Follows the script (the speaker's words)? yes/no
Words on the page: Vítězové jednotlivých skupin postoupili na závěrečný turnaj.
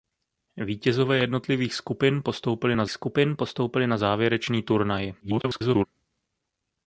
no